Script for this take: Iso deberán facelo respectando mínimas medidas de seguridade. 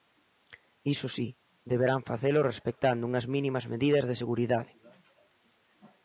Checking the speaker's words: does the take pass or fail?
fail